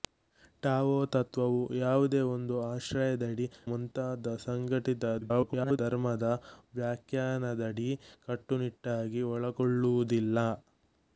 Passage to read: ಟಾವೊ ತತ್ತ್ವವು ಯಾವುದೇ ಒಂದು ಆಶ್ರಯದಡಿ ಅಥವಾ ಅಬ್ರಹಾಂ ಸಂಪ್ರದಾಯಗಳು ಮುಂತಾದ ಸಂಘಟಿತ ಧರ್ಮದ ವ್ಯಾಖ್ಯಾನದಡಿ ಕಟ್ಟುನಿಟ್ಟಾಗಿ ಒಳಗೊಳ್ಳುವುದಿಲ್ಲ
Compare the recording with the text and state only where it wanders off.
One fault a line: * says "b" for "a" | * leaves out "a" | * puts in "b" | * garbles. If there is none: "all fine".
* leaves out "ಅಥವಾ ಅಬ್ರಹಾಂ ಸಂಪ್ರದಾಯಗಳು"
* garbles